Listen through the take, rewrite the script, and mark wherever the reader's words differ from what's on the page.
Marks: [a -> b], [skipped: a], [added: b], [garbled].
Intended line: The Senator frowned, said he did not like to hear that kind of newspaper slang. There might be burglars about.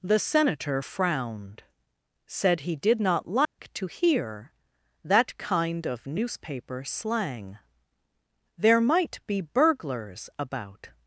The Senator frowned, said he did not like to hear that kind of newspaper slang. There might be burglars about.